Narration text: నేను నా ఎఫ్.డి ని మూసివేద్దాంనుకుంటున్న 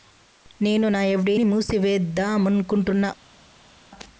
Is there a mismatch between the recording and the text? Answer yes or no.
no